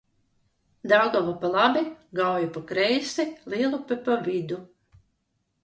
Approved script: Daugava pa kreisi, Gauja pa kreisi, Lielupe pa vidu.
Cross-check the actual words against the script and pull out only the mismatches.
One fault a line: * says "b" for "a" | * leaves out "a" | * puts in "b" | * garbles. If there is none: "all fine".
* says "labi" for "kreisi"